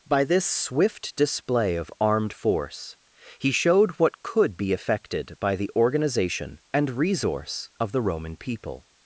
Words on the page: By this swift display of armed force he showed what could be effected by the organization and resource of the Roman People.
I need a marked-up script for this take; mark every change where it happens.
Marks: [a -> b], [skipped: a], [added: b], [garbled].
By this swift display of armed force he showed what could be effected by the organization and resource of the Roman People.